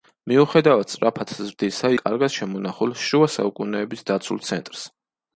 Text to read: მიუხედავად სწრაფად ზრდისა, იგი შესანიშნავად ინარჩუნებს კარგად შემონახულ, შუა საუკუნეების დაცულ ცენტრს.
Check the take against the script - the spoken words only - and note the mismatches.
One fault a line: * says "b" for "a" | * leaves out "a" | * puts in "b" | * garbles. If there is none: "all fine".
* leaves out "იგი შესანიშნავად ინარჩუნებს"